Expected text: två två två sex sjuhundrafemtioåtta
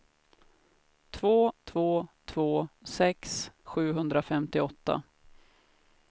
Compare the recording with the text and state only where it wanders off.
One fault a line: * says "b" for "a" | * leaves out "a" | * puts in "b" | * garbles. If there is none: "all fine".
all fine